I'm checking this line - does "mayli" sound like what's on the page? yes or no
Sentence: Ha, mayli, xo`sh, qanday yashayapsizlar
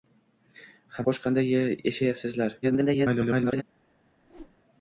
no